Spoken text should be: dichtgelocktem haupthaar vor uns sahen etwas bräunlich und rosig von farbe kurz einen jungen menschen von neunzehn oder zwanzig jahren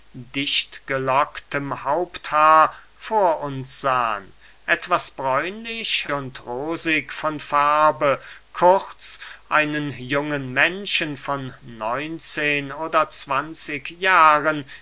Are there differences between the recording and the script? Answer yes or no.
no